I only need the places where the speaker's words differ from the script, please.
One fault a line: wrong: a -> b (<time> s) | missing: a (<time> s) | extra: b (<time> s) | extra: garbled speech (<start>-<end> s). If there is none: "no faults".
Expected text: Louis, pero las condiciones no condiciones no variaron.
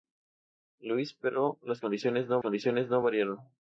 no faults